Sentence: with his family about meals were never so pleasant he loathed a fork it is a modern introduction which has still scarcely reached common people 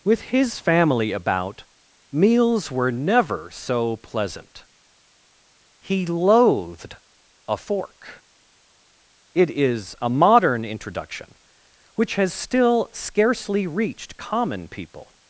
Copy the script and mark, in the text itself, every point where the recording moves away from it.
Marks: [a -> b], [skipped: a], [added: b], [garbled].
with his family about meals were never so pleasant he loathed a fork it is a modern introduction which has still scarcely reached common people